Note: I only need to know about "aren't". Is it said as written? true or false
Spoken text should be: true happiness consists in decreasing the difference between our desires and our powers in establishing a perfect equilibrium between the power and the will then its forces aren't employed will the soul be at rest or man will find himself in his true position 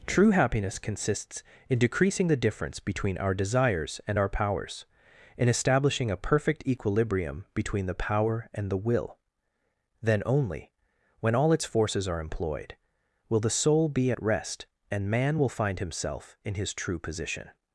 false